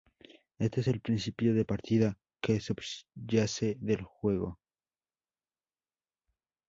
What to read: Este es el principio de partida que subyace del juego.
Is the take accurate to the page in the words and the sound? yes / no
yes